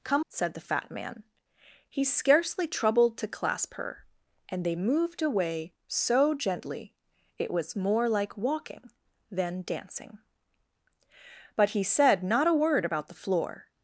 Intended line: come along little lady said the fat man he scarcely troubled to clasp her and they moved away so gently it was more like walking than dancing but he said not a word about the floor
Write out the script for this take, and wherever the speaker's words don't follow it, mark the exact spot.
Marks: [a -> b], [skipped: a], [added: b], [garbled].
come [skipped: along little lady] said the fat man he scarcely troubled to clasp her and they moved away so gently it was more like walking than dancing but he said not a word about the floor